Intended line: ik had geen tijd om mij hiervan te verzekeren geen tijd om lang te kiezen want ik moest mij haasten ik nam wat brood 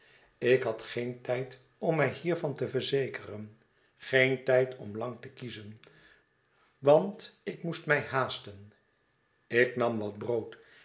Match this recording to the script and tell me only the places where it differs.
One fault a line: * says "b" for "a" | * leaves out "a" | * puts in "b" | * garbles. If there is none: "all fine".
all fine